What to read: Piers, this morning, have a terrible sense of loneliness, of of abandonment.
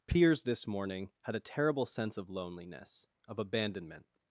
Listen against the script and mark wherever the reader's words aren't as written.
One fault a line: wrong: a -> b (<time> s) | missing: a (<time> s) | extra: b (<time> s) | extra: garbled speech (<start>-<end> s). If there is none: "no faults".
wrong: have -> had (1.2 s)
missing: of (3.4 s)